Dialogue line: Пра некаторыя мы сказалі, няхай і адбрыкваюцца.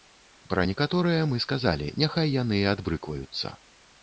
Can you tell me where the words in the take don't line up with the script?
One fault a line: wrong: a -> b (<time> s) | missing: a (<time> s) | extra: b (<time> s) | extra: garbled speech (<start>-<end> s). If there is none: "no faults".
extra: яны (2.4 s)